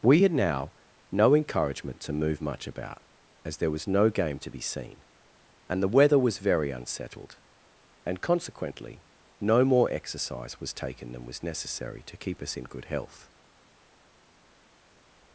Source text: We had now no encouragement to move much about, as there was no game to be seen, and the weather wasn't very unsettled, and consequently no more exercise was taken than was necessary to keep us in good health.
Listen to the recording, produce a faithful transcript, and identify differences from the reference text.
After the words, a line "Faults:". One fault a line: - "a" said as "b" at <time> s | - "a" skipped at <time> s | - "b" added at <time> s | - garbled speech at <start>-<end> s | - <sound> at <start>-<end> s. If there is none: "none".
We had now no encouragement to move much about, as there was no game to be seen, and the weather was very unsettled, and consequently no more exercise was taken than was necessary to keep us in good health.
Faults:
- "wasn't" said as "was" at 6.2 s